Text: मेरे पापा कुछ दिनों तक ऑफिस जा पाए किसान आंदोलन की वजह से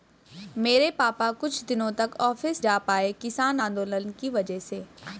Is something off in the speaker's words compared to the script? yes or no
no